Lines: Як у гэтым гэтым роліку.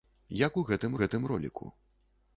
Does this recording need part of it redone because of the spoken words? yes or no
no